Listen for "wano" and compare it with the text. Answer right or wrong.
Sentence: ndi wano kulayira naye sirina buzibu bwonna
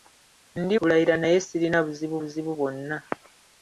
wrong